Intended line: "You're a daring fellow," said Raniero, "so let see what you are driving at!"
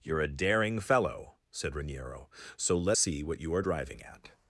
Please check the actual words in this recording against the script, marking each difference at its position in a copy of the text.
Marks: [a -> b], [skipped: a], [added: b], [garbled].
"You're a daring fellow," said Raniero, "so let see what you are driving at!"